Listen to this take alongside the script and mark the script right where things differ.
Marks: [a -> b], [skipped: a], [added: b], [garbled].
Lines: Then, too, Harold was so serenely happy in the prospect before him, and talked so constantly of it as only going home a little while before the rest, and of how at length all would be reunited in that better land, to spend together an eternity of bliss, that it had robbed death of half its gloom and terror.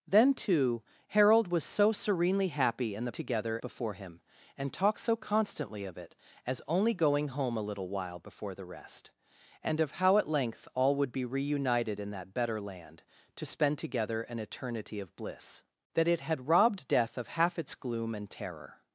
Then, too, Harold was so serenely happy in the [prospect -> together] before him, and talked so constantly of it as only going home a little while before the rest, and of how at length all would be reunited in that better land, to spend together an eternity of bliss, that it had robbed death of half its gloom and terror.